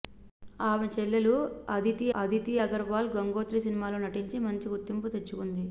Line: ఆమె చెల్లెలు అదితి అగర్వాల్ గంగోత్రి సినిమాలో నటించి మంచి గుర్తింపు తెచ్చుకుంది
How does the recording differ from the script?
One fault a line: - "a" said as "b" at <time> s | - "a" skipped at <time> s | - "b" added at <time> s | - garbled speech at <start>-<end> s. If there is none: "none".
- "అదితి" added at 2.2 s